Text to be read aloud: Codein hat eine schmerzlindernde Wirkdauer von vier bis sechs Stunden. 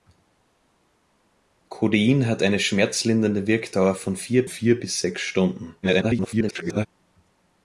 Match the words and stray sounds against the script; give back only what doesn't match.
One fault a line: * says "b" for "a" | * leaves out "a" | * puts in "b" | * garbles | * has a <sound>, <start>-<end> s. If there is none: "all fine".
* puts in "vier"
* garbles